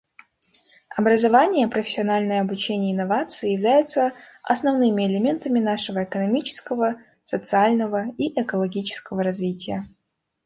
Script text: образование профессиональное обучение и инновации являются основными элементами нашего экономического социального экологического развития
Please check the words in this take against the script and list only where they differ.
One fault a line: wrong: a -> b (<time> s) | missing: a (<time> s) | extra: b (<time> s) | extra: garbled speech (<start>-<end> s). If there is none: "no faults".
extra: и (8.2 s)